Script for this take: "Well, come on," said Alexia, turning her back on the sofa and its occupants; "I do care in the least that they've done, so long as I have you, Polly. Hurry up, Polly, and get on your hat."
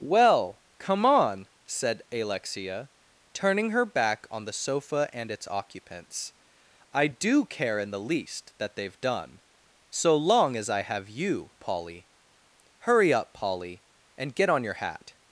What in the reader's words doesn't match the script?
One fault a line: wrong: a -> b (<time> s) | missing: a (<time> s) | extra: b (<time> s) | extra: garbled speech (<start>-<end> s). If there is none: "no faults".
no faults